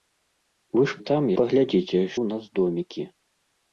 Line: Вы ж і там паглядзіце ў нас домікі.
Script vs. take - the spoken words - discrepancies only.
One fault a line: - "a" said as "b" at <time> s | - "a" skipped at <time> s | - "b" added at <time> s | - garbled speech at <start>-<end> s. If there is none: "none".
none